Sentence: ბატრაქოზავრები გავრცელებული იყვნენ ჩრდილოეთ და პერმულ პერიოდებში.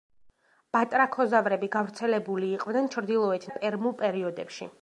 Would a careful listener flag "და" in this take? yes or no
no